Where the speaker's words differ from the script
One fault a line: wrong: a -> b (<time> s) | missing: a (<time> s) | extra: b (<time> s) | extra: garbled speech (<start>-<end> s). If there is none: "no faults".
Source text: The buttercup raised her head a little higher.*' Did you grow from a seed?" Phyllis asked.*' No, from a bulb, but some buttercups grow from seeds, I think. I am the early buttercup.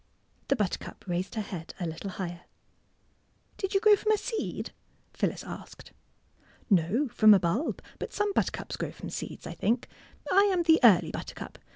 no faults